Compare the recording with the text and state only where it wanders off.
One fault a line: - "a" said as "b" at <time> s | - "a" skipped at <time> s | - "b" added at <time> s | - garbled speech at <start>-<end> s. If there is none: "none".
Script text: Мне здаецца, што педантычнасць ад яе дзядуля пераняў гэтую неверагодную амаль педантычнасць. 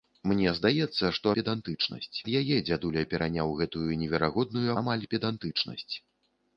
none